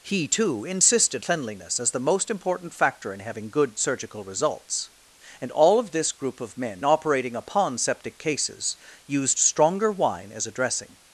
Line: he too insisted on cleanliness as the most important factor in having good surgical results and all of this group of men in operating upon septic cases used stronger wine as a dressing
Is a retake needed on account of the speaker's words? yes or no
yes